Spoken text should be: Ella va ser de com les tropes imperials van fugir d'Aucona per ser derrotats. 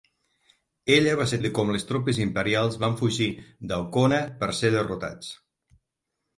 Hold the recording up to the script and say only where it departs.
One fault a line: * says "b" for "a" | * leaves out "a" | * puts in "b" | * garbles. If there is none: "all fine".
all fine